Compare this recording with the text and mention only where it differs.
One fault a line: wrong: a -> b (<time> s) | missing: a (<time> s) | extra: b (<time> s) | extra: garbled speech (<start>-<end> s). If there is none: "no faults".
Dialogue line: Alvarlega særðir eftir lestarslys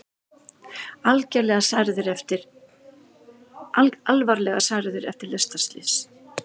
no faults